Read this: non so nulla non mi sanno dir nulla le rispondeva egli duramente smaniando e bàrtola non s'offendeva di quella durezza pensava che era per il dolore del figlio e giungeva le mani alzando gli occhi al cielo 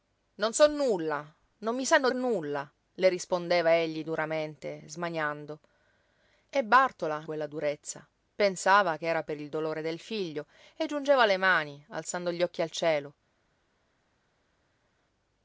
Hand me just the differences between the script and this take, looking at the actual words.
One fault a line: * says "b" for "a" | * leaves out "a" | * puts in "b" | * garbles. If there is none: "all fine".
* leaves out "dir"
* leaves out "non s'offendeva di"